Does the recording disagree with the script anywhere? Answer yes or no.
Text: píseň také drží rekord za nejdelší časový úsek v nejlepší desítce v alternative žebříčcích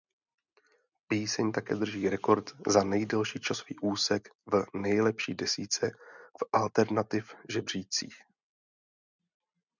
no